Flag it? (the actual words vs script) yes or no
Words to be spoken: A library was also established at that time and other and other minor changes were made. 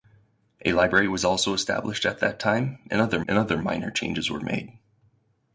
no